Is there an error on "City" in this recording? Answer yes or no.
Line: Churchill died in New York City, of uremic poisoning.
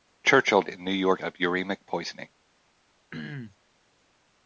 yes